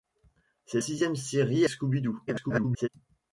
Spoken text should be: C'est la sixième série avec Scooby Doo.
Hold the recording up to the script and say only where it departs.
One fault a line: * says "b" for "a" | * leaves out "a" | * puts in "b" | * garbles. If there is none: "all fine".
* leaves out "la"
* leaves out "avec"
* garbles